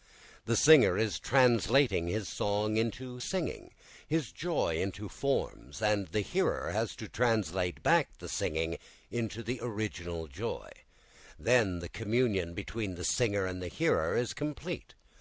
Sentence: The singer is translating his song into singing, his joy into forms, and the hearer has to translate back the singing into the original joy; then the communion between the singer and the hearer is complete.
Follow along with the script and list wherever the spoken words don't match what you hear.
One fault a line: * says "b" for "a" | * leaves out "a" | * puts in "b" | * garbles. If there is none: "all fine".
all fine